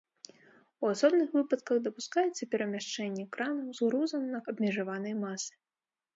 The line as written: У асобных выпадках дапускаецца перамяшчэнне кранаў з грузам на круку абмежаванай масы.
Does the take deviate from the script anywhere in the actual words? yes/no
yes